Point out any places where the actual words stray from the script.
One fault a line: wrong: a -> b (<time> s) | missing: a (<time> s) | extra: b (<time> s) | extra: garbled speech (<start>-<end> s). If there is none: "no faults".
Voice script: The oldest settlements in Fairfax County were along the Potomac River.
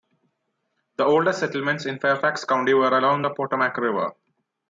no faults